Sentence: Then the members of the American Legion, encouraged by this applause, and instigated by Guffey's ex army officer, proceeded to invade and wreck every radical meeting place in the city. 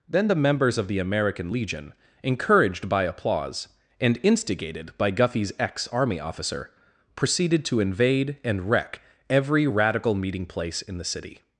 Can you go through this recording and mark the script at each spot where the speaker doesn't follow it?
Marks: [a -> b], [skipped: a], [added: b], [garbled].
Then the members of the American Legion, encouraged by [skipped: this] applause, and instigated by Guffey's ex army officer, proceeded to invade and wreck every radical meeting place in the city.